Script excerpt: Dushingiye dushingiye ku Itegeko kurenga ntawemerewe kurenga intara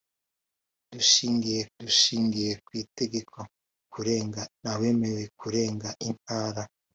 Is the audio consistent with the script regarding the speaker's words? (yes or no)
yes